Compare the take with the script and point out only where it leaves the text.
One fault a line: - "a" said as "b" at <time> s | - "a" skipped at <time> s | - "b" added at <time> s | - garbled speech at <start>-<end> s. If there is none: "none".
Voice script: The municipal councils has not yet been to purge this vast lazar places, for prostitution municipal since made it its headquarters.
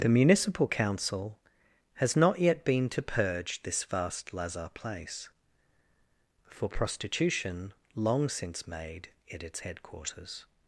- "councils" said as "council" at 0.7 s
- "places" said as "place" at 4.7 s
- "municipal" said as "long" at 8.0 s